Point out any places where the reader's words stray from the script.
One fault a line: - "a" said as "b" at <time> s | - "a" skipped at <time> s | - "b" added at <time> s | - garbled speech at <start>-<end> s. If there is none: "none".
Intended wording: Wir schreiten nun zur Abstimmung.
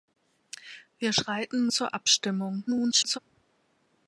- "nun" skipped at 1.7 s
- garbled speech at 2.7-3.2 s